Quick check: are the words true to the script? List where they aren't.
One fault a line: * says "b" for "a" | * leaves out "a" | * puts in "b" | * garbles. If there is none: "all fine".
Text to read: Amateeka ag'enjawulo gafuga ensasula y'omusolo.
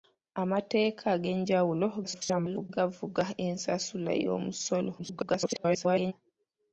* garbles
* garbles